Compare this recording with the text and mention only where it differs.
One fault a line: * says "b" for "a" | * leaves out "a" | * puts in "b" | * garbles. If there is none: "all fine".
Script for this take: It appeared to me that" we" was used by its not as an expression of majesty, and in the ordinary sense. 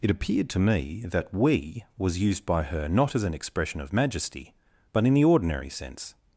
* says "her" for "its"
* says "but" for "and"